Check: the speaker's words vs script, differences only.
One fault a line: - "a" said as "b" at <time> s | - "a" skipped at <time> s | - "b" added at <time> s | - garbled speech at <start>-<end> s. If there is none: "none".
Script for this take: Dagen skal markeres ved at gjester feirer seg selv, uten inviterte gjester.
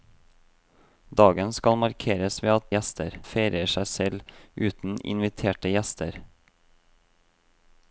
none